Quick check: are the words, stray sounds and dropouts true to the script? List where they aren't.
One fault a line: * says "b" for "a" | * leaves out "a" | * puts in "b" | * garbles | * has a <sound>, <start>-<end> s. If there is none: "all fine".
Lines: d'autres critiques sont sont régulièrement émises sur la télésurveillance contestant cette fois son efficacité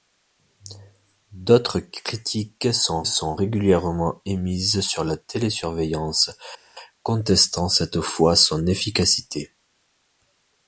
all fine